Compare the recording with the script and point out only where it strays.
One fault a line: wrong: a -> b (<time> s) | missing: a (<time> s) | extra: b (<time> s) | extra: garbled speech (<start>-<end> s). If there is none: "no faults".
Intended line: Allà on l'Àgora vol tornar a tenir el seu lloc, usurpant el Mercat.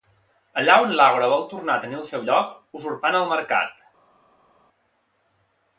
no faults